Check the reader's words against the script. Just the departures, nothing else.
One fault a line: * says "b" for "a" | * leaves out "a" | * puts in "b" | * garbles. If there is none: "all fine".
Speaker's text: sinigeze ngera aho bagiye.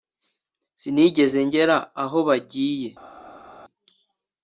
all fine